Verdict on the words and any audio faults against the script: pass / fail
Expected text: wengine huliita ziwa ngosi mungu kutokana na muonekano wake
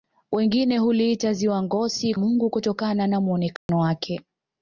fail